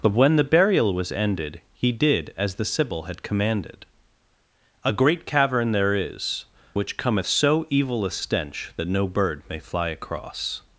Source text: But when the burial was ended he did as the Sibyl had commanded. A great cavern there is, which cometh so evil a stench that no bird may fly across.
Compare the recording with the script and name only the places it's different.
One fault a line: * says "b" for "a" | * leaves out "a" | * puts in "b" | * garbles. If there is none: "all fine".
all fine